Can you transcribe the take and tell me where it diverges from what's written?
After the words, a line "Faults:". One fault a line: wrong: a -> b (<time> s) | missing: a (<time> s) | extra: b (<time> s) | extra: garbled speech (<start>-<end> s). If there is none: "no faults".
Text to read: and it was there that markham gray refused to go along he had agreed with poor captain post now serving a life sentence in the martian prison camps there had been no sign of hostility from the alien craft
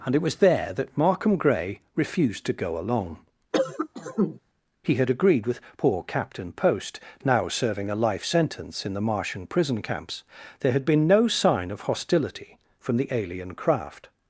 and it was there that markham gray refused to go along he had agreed with poor captain post now serving a life sentence in the martian prison camps there had been no sign of hostility from the alien craft
Faults:
no faults